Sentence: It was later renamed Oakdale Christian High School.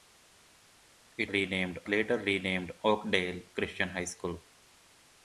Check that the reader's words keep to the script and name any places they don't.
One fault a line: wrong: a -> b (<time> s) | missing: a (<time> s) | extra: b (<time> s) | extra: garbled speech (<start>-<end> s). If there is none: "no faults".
wrong: was -> renamed (1.3 s)